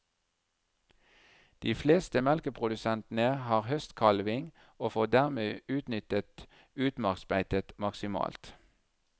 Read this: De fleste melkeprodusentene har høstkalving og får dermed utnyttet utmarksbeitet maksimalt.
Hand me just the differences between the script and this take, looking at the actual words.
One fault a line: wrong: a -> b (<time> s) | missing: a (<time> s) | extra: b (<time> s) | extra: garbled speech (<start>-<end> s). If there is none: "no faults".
no faults